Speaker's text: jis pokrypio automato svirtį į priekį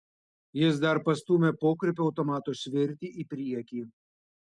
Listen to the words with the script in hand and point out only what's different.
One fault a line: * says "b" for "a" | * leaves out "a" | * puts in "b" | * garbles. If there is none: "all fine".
* puts in "dar pastūmė"